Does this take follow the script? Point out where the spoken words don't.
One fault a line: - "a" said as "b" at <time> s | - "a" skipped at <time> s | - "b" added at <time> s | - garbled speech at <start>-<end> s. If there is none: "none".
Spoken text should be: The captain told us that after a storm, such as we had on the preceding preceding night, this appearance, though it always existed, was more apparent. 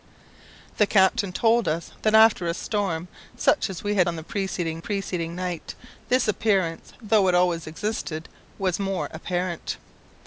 none